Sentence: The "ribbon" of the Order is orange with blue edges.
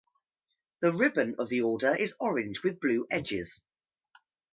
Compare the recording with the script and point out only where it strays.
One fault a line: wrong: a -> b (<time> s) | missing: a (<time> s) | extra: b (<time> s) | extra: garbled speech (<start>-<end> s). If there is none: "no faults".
no faults